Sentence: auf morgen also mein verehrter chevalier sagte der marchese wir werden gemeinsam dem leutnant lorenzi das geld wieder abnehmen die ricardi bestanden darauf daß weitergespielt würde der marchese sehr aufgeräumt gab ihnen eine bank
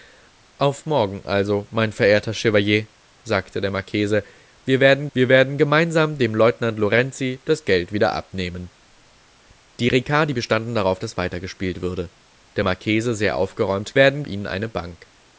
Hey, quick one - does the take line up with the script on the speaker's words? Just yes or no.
no